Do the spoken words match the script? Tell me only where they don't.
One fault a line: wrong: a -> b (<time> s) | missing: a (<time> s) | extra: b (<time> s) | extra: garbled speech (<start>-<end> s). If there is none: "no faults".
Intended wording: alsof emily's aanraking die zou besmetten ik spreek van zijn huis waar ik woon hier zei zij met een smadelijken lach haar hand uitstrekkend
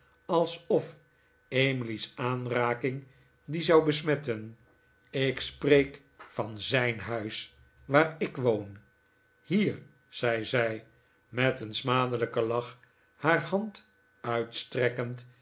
no faults